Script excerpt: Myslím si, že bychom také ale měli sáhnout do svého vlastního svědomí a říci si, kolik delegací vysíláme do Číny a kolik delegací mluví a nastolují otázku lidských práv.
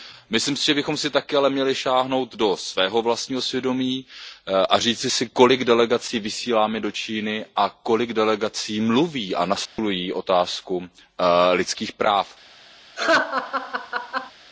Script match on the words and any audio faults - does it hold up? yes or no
no